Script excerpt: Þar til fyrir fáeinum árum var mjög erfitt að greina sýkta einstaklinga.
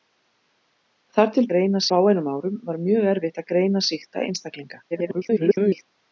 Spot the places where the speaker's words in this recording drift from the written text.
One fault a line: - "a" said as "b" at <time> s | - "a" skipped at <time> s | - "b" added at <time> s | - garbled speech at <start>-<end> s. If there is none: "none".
- "fyrir" said as "greina" at 1.5 s
- garbled speech at 4.9-5.9 s